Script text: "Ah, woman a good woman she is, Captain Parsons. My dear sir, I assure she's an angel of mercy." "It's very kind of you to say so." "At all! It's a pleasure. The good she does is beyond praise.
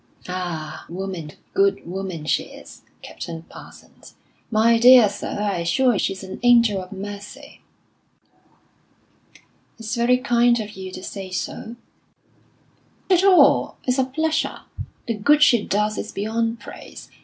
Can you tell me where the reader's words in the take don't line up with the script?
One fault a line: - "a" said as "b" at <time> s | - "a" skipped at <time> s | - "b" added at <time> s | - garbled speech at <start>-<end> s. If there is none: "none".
none